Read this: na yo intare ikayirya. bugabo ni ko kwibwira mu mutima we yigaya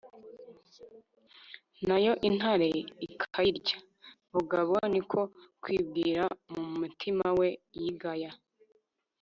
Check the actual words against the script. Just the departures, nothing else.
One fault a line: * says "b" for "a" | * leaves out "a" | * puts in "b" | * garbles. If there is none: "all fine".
all fine